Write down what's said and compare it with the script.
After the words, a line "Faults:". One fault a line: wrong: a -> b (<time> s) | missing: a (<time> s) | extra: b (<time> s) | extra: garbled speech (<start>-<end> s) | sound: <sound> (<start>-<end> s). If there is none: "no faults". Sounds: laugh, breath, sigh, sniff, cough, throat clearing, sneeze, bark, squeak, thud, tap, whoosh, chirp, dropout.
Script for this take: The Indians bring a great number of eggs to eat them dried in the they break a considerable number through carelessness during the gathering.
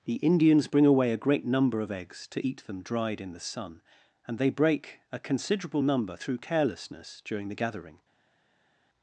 The Indians bring away a great number of eggs to eat them dried in the sun; and they break a considerable number through carelessness during the gathering.
Faults:
extra: away (0.9 s)
extra: sun and (3.4 s)